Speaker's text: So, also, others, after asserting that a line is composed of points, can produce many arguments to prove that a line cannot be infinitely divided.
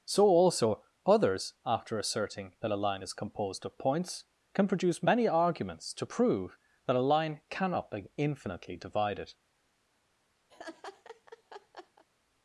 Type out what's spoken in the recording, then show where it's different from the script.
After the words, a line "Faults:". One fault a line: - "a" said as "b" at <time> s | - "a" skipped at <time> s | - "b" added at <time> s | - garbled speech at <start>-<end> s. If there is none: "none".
So, also, others, after asserting that a line is composed of points, can produce many arguments to prove that a line cannot be infinitely divided.
Faults:
none